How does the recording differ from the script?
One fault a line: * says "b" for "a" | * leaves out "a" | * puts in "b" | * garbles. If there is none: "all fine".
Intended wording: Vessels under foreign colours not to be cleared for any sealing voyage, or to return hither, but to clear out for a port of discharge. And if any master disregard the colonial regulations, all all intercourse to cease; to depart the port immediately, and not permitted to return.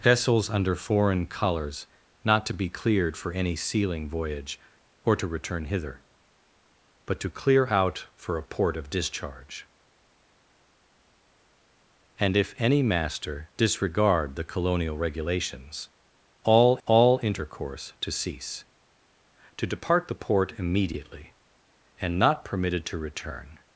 all fine